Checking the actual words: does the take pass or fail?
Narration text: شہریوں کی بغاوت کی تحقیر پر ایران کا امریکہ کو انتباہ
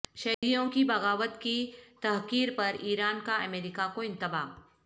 pass